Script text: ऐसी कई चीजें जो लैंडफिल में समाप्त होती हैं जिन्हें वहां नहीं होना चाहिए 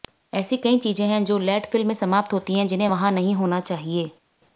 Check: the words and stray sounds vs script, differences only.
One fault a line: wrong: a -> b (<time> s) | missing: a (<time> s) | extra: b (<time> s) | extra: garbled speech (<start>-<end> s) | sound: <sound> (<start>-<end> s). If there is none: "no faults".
extra: हैं (1.1 s)